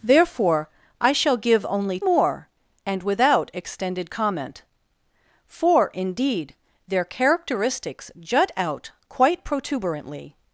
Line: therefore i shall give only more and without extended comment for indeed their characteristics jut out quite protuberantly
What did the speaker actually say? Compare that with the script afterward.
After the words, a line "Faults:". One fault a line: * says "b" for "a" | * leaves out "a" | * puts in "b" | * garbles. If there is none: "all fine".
therefore i shall give only more and without extended comment for indeed their characteristics jut out quite protuberantly
Faults:
all fine